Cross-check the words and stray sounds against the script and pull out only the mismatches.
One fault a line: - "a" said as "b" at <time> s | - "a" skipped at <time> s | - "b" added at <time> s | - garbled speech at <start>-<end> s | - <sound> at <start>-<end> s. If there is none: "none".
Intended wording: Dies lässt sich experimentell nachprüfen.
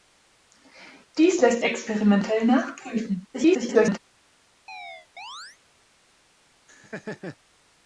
- "sich" skipped at 1.6 s
- garbled speech at 3.3-4.0 s
- chirp at 4.7-5.6 s
- laugh at 6.7-7.4 s